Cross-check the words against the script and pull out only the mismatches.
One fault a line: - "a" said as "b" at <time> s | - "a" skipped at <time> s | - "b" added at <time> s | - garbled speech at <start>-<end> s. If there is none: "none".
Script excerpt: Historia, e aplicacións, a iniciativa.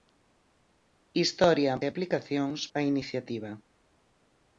none